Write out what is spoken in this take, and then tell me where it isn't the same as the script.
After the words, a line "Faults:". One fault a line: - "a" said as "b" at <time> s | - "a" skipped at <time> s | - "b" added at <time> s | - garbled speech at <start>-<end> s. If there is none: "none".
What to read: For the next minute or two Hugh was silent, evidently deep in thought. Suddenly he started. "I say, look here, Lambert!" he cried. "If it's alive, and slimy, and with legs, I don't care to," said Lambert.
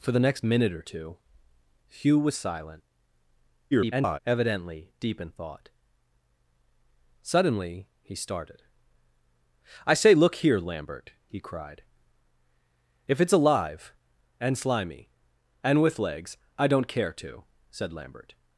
For the next minute or two Hugh was silent, [garbled] evidently deep in thought. Suddenly he started. "I say, look here, Lambert!" he cried. "If it's alive, and slimy, and with legs, I don't care to," said Lambert.
Faults:
- garbled speech at 3.7-4.2 s